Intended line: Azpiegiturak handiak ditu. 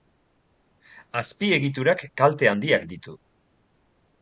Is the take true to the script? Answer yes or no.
no